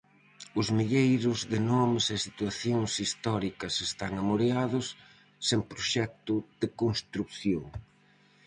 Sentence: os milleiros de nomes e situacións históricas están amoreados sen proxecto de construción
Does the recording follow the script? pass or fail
pass